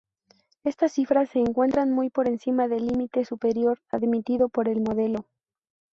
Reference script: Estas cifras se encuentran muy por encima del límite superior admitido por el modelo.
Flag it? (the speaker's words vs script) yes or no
no